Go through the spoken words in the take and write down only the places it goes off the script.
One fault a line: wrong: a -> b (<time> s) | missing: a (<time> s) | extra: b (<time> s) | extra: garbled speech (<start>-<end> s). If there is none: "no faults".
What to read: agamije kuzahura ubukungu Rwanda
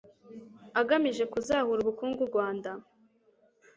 no faults